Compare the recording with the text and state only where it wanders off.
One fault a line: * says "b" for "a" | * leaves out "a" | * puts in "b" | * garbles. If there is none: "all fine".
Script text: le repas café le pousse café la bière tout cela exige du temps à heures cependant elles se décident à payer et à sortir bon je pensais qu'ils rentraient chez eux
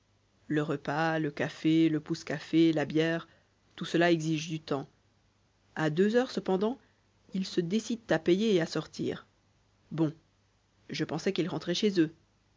* puts in "le"
* puts in "deux"
* says "ils" for "elles"